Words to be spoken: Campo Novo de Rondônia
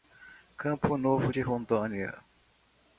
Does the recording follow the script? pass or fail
pass